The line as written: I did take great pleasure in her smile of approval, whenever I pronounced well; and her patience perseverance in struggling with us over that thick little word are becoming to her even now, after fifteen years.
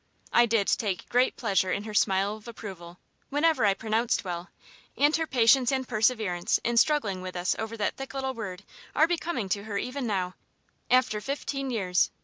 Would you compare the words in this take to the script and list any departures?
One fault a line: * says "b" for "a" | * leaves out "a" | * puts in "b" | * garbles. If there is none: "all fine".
* puts in "and"